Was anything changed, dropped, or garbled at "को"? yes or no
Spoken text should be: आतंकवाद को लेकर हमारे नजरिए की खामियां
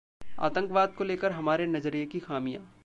no